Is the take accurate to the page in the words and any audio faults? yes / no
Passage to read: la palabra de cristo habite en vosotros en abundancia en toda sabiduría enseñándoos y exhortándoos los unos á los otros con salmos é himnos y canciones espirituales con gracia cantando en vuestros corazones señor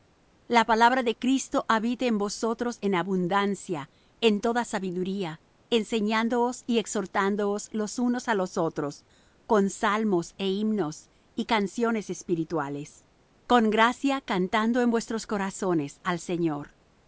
no